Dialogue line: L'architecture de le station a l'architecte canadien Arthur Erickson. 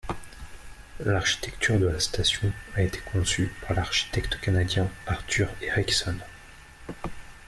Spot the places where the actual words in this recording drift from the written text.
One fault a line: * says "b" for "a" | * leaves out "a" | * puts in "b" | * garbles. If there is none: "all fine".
* says "la" for "le"
* puts in "été conçue par"